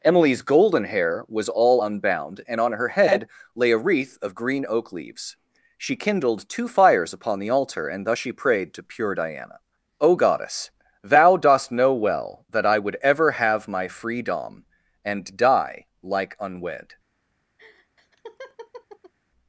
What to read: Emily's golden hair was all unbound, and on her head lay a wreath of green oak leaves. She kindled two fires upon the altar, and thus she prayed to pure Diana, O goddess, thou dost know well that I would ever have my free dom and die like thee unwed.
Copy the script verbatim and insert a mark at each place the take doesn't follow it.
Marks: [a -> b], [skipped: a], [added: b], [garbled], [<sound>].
Emily's golden hair was all unbound, and on her head lay a wreath of green oak leaves. She kindled two fires upon the altar, and thus she prayed to pure Diana, O goddess, thou dost know well that I would ever have my free dom and die like [skipped: thee] unwed. [laugh]